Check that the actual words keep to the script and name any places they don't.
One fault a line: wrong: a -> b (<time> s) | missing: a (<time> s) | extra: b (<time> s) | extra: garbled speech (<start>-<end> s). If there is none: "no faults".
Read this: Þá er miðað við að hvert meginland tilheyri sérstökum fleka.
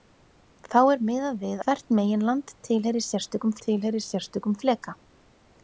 missing: að (1.6 s)
extra: tilheyri sérstökum (3.7 s)